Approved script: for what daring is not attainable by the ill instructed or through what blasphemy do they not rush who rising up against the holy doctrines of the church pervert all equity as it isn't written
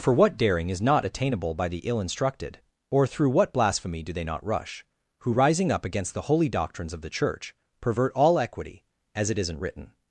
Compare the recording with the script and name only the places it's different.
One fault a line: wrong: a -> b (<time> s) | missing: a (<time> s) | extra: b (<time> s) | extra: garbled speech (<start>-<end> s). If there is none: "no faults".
no faults